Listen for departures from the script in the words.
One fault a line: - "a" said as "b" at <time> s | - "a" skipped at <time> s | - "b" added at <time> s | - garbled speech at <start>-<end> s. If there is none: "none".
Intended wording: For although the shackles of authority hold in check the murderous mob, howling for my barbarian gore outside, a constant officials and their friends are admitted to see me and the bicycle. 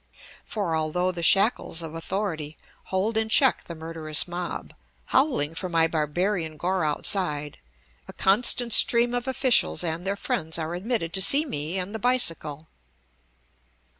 - "stream of" added at 8.7 s